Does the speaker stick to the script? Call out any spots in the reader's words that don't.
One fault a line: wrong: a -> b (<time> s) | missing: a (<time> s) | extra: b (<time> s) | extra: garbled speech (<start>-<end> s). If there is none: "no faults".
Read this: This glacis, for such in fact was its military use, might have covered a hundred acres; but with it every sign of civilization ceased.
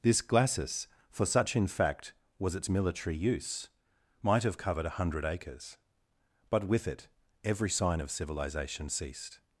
no faults